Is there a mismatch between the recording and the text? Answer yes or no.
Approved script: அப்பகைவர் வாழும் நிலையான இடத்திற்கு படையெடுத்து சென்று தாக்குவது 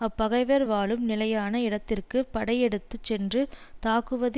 no